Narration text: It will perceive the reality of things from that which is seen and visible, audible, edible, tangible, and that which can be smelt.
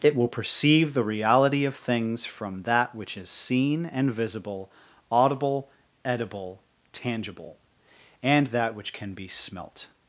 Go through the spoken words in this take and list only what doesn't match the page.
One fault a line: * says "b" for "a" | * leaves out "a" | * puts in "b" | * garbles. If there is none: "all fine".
all fine